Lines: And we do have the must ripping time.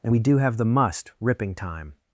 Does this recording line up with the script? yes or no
yes